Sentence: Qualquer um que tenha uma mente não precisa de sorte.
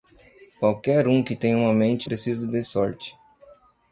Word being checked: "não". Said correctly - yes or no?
no